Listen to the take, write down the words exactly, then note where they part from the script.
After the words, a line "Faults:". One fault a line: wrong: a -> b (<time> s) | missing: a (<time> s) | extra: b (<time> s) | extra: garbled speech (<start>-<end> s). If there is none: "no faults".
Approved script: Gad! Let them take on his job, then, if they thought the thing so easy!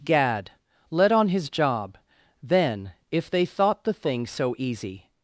Gad! Let on his job, then, if they thought the thing so easy!
Faults:
missing: them take (1.1 s)